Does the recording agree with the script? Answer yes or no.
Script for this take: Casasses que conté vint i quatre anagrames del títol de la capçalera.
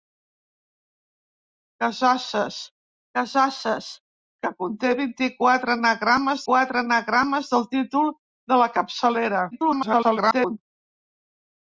no